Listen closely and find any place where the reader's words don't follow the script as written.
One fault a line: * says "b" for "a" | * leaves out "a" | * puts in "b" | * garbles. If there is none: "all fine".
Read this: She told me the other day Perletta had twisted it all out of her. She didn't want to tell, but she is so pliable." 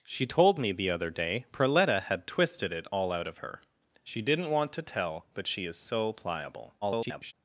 * garbles